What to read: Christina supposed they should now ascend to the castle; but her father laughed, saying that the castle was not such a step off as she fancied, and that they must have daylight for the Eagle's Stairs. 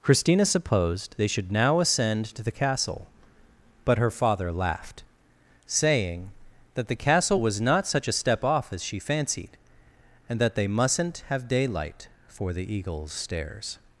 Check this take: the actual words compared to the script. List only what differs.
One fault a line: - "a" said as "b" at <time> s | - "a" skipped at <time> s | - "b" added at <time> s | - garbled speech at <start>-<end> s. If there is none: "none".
- "must" said as "mustn't" at 10.7 s